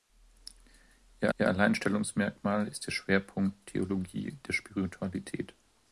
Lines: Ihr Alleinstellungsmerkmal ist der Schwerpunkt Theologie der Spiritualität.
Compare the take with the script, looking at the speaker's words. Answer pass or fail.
fail